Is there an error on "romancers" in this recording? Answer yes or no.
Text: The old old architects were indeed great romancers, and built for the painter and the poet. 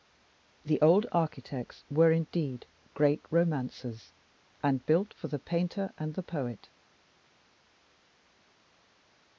no